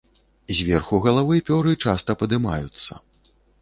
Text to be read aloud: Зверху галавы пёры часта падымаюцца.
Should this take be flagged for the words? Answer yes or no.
no